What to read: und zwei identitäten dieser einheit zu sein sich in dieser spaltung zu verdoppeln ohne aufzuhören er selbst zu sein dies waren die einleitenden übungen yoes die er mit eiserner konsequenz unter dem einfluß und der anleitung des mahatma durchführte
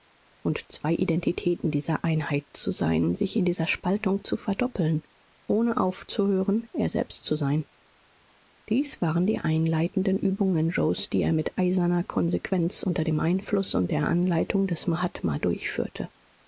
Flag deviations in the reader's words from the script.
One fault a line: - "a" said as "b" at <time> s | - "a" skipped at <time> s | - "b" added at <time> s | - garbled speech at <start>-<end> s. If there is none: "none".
none